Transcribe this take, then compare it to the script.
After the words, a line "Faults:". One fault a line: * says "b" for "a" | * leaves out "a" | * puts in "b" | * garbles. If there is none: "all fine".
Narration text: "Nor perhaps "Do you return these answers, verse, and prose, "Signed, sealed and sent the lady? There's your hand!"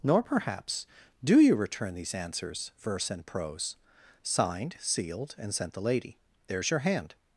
"Nor perhaps "Do you return these answers, verse, and prose, "Signed, sealed and sent the lady? There's your hand!"
Faults:
all fine